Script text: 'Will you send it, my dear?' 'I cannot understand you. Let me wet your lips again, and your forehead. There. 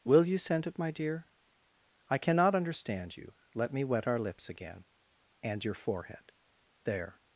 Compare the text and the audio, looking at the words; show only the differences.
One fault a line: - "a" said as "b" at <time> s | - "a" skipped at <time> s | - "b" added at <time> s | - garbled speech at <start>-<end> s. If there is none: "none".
- "your" said as "our" at 4.1 s